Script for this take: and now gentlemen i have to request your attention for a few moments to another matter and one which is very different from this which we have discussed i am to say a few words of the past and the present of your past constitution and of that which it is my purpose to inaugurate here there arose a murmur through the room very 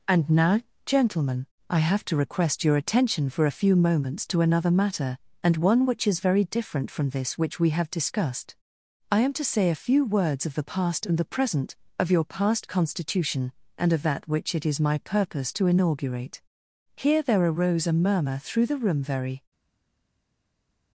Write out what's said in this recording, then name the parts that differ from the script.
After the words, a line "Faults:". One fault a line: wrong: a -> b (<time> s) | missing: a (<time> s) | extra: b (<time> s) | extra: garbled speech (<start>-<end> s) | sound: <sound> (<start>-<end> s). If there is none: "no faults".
and now gentlemen i have to request your attention for a few moments to another matter and one which is very different from this which we have discussed i am to say a few words of the past and the present of your past constitution and of that which it is my purpose to inaugurate here there arose a murmur through the room very
Faults:
no faults